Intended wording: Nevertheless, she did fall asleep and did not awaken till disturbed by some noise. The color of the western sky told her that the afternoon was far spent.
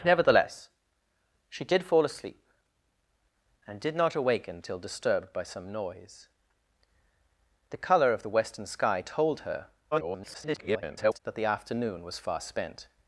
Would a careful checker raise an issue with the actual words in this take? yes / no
yes